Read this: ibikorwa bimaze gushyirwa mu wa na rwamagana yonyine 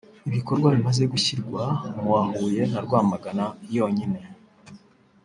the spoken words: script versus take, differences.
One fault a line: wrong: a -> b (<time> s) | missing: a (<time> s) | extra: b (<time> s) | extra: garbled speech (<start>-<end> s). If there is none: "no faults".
extra: huye (2.3 s)